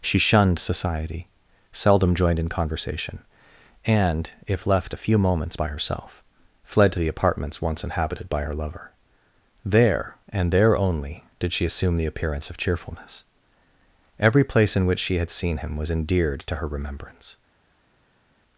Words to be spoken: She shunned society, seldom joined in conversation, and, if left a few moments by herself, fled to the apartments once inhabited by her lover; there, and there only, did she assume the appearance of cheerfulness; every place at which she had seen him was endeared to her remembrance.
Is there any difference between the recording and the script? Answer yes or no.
yes